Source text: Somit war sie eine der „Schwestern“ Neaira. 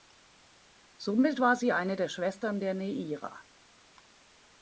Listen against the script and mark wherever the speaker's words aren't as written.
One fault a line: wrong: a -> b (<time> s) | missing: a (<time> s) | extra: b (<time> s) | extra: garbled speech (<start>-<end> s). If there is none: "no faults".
extra: der (2.6 s)